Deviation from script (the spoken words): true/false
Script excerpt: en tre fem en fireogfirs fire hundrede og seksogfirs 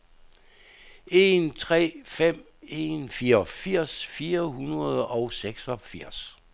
false